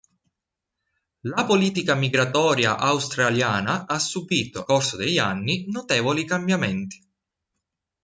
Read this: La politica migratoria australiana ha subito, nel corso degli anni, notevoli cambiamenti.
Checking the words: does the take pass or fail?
fail